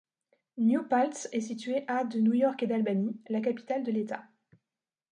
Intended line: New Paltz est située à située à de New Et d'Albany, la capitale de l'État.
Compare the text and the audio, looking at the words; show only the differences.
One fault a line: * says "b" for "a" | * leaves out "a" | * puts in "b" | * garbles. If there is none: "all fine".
* leaves out "située à"
* puts in "York"